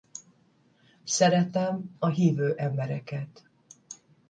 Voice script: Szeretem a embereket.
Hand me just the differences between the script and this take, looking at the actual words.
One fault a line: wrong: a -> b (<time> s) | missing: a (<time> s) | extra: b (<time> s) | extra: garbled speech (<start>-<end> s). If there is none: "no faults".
extra: hívő (2.1 s)